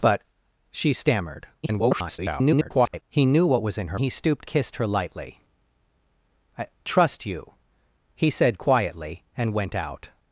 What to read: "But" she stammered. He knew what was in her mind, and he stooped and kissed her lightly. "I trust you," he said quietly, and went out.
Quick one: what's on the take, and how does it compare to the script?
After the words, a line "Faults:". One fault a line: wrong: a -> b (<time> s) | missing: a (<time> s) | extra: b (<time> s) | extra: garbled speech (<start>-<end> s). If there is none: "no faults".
"But" she stammered. [garbled] He knew what was in her he stooped kissed her lightly. "I trust you," he said quietly, and went out.
Faults:
extra: garbled speech (1.6-3.0 s)
missing: mind and (4.0 s)
missing: and (4.5 s)